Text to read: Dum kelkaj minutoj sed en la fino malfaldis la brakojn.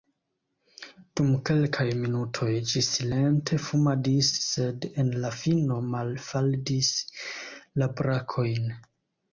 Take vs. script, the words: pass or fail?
fail